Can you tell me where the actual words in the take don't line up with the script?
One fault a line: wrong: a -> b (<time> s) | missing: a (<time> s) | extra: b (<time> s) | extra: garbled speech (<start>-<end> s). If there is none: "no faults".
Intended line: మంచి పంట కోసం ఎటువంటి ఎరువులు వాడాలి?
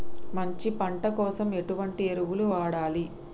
no faults